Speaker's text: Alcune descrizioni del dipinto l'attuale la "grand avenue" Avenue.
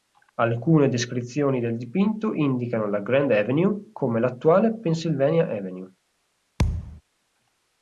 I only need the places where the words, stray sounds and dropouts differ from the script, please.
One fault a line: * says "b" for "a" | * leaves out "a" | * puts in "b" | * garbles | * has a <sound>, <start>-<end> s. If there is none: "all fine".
* says "indicano" for "l'attuale"
* puts in "come l'attuale Pennsylvania"
* has a thud, 6.6-7.0 s